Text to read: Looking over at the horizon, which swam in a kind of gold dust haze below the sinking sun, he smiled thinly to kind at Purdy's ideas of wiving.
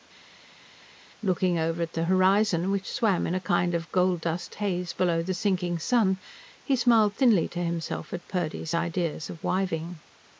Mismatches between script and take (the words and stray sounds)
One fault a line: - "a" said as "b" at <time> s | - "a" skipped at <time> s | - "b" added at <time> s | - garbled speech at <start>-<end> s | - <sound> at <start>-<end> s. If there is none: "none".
- "kind" said as "himself" at 7.6 s